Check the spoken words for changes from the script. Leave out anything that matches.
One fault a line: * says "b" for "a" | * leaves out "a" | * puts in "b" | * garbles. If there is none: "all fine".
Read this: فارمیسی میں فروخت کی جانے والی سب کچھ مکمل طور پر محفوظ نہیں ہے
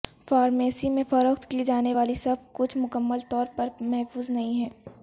all fine